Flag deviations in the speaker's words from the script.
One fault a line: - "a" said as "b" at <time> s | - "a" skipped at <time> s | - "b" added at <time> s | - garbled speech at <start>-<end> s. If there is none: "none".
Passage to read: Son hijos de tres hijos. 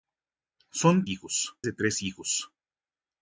none